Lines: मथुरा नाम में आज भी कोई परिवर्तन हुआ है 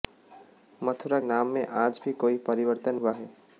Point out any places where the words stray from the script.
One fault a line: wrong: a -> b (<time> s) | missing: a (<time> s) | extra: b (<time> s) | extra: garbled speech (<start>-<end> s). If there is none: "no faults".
no faults